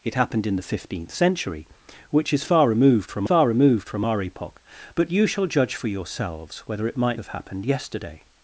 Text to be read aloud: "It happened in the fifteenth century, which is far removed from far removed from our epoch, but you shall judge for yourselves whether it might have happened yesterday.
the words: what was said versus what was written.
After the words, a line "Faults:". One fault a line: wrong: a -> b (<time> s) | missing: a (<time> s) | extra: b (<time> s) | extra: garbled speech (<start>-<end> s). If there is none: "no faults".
"It happened in the fifteenth century, which is far removed from far removed from our epoch, but you shall judge for yourselves whether it might have happened yesterday.
Faults:
no faults